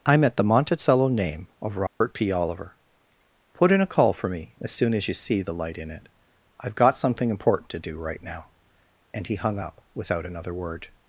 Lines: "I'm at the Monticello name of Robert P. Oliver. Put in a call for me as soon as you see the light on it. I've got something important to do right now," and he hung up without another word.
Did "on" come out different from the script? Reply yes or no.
yes